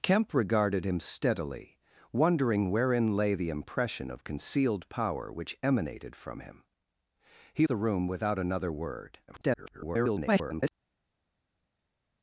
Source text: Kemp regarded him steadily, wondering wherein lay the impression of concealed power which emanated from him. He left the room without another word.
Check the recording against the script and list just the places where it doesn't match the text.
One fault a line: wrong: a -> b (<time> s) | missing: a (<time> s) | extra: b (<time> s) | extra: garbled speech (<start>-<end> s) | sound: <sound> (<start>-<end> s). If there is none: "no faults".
missing: left (7.7 s)
extra: garbled speech (9.3-10.7 s)